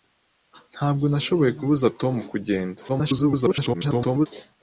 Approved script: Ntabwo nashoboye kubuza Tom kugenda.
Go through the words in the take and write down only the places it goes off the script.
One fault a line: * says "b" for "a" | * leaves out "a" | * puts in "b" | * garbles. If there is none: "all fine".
* garbles